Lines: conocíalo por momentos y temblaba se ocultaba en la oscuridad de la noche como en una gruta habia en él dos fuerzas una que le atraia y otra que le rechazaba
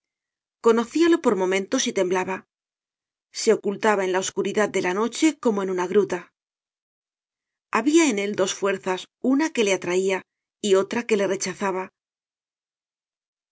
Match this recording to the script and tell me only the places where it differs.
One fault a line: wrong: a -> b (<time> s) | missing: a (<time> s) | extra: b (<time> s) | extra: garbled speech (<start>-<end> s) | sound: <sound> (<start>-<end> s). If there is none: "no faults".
no faults